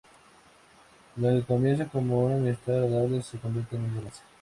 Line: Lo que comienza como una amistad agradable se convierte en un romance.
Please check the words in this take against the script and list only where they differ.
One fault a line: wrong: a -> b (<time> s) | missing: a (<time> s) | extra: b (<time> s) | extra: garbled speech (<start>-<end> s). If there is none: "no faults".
no faults